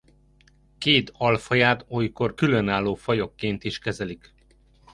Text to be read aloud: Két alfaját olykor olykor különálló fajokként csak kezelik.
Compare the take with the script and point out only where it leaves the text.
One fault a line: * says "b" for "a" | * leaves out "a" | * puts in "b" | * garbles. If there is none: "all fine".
* leaves out "olykor"
* says "is" for "csak"